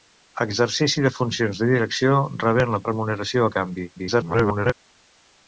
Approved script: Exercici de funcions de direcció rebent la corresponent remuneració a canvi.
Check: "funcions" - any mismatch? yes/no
no